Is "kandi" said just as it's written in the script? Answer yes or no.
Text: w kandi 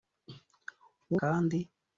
yes